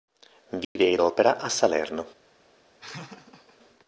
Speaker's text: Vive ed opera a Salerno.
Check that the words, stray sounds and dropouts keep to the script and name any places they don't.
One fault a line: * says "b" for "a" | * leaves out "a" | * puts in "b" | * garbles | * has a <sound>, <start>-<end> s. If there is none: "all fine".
* has a dropout, 0.6-0.8 s
* has a laugh, 2.8-3.6 s